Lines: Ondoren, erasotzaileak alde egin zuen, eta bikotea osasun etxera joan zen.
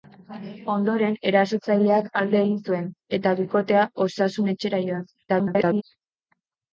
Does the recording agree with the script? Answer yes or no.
no